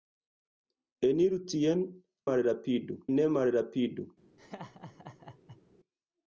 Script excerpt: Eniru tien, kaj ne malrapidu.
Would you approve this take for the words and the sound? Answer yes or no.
no